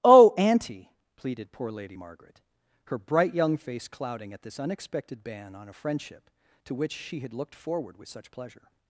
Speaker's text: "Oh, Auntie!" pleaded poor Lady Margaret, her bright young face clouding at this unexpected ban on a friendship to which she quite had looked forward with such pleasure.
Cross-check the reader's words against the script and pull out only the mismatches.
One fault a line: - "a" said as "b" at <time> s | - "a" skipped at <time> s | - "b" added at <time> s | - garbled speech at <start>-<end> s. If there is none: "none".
- "quite" skipped at 7.2 s